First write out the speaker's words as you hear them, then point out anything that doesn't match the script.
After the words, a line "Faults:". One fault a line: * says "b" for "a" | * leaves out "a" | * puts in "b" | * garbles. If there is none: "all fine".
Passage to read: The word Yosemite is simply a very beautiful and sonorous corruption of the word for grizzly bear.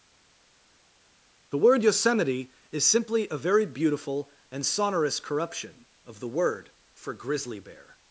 The word Yosemite is simply a very beautiful and sonorous corruption of the word for grizzly bear.
Faults:
all fine